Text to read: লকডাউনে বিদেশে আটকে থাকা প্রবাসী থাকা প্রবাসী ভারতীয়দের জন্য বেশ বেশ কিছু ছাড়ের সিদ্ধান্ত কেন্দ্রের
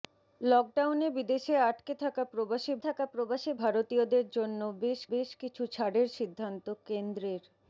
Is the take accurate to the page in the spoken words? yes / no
yes